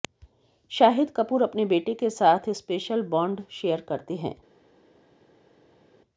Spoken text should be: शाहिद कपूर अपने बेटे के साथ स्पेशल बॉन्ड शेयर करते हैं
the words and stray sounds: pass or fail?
pass